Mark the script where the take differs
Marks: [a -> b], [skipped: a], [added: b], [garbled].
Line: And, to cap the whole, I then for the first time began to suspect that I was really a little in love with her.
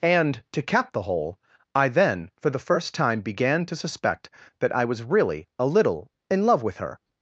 And, to cap the whole, I then for the first time began to suspect that I was really a little in love with her.